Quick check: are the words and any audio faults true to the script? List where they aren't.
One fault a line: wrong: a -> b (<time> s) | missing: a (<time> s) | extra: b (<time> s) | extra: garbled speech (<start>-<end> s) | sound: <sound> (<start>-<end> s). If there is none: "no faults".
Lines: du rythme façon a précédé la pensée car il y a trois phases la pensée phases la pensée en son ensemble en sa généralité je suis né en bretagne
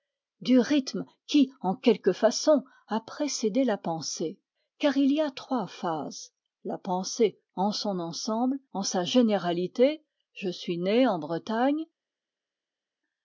extra: qui en quelque (1.3 s)
missing: phases la pensée (7.4 s)